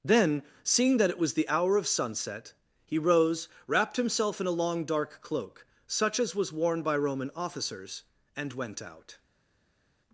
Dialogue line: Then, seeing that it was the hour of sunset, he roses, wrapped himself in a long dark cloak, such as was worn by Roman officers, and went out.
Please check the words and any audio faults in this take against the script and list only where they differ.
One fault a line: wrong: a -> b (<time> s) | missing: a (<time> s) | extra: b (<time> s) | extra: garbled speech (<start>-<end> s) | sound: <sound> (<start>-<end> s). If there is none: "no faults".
wrong: roses -> rose (3.0 s)